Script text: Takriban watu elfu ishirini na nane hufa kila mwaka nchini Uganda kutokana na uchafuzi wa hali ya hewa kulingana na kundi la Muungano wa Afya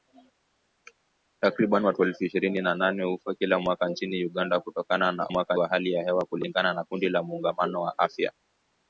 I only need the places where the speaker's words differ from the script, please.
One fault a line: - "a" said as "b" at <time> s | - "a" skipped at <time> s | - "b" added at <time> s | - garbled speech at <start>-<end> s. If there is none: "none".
- "uchafuzi" said as "mwaka" at 5.3 s